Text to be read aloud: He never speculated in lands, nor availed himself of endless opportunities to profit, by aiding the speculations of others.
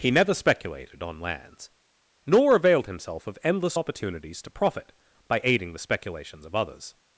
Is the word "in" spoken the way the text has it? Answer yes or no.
no